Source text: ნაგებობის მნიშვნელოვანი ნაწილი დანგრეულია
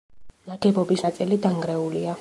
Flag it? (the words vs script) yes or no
yes